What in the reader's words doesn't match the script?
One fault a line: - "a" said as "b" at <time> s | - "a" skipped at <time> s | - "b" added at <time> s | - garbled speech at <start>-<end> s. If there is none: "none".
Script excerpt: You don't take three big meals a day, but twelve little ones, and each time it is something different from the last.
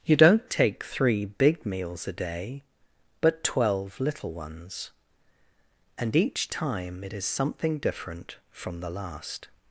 none